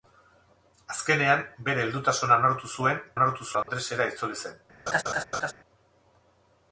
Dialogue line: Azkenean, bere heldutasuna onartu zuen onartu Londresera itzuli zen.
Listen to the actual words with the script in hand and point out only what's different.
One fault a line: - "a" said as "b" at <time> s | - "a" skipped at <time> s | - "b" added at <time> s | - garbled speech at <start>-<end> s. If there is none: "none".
none